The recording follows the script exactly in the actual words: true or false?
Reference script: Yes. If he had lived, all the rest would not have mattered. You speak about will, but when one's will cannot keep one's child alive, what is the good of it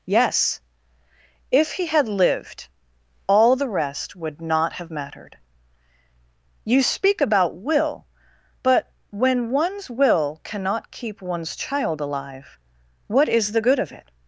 true